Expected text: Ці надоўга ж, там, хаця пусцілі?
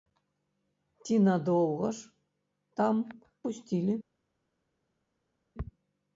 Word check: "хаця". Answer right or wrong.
wrong